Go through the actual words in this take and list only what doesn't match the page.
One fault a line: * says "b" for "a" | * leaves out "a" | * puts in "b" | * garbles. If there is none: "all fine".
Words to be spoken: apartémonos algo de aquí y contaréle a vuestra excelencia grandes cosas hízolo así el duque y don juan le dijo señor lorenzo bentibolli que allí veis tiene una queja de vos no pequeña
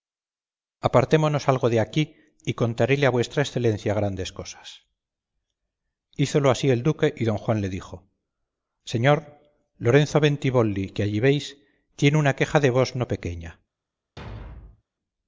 all fine